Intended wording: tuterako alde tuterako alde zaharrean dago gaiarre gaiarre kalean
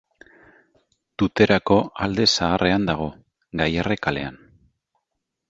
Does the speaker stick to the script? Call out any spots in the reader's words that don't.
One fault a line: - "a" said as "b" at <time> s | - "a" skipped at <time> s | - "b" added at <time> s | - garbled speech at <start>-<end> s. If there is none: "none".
- "tuterako alde" skipped at 2.2 s
- "gaiarre" skipped at 4.0 s